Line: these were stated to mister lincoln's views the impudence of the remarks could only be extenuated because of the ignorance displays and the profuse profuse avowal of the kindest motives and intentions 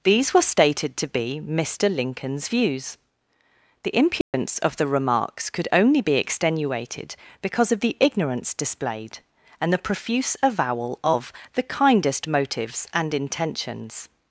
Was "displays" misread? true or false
true